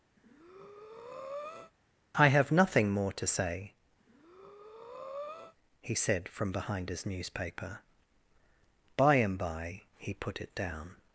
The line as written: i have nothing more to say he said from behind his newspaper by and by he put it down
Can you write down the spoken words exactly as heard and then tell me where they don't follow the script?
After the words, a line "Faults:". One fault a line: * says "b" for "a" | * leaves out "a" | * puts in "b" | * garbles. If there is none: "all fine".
i have nothing more to say he said from behind his newspaper by and by he put it down
Faults:
all fine